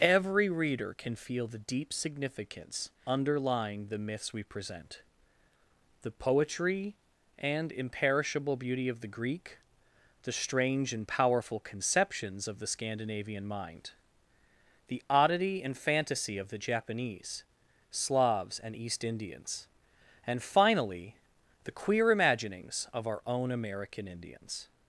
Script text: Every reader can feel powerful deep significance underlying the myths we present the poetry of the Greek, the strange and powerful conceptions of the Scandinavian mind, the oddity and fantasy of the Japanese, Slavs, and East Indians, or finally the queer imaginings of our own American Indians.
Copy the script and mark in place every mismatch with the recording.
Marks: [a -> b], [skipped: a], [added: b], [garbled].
Every reader can feel [powerful -> the] deep significance underlying the myths we present the poetry [added: and imperishable beauty] of the Greek, the strange and powerful conceptions of the Scandinavian mind, the oddity and fantasy of the Japanese, Slavs, and East Indians, [or -> and] finally the queer imaginings of our own American Indians.